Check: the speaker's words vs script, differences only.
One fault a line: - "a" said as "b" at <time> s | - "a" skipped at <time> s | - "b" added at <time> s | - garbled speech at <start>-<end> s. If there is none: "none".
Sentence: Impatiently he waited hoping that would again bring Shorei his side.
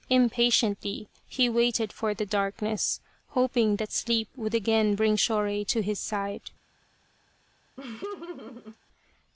- "for the darkness" added at 1.9 s
- "sleep" added at 3.9 s
- "to" added at 5.7 s